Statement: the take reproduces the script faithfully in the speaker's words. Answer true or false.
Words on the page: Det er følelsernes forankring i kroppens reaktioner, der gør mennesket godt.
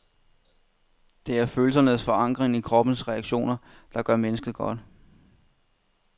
true